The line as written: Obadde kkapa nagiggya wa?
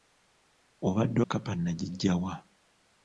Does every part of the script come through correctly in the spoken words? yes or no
yes